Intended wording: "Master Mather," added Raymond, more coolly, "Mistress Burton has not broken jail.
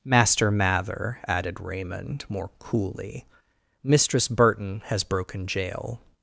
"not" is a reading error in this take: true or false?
true